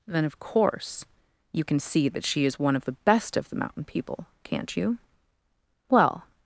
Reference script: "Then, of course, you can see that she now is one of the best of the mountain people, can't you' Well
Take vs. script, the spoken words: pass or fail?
fail